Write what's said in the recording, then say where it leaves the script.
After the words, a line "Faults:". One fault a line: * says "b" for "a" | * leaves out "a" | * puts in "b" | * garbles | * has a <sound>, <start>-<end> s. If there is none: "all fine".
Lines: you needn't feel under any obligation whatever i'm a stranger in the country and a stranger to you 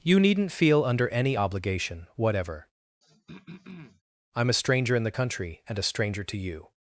you needn't feel under any obligation whatever i'm a stranger in the country and a stranger to you
Faults:
* has a throat clearing, 3.0-4.0 s